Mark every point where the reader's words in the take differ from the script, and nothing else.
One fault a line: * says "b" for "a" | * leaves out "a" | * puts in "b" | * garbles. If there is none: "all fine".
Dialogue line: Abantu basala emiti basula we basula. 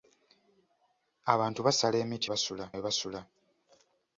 all fine